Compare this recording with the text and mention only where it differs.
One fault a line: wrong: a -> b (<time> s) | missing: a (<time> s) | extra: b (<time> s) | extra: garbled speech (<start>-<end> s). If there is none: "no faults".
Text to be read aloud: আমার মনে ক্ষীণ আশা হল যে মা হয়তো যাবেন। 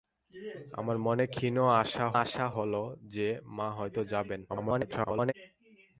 extra: আশা (2.2 s)
extra: garbled speech (4.5-5.3 s)